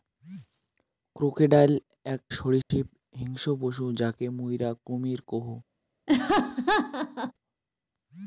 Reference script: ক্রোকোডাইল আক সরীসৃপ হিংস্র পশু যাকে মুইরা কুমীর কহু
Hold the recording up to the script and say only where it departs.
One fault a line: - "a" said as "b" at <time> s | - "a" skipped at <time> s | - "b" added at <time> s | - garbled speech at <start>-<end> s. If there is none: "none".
none